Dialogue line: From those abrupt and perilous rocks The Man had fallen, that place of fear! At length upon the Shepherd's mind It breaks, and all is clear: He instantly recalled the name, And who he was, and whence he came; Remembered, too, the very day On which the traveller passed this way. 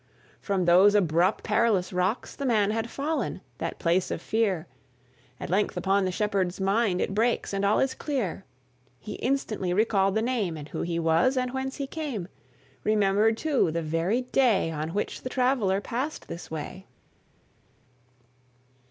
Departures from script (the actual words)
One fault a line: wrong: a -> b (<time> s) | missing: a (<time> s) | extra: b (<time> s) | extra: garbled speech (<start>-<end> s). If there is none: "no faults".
missing: and (1.5 s)